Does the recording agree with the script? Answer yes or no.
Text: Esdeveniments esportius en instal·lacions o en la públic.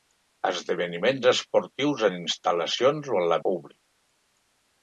yes